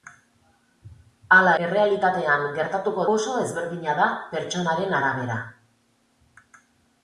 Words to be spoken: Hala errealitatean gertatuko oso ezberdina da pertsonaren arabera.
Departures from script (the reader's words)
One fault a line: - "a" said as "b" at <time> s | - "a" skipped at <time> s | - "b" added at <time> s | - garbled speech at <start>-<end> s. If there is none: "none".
none